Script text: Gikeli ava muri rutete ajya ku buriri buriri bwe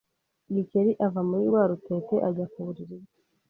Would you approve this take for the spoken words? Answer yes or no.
no